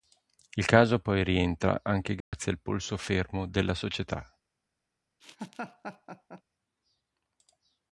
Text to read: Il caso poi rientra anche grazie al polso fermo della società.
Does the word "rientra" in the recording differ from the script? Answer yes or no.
no